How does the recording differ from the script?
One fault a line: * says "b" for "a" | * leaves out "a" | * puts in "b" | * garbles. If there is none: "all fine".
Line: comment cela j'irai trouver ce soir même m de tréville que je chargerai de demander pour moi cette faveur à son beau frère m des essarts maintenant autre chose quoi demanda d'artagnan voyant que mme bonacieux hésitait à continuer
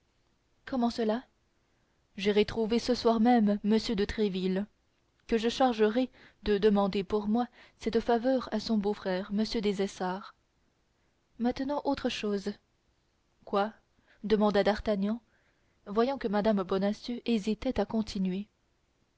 all fine